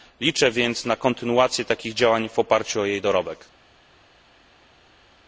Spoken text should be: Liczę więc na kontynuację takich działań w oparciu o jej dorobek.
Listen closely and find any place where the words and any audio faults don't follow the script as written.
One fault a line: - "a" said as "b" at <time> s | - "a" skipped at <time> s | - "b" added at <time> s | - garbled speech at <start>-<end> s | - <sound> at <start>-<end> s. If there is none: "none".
none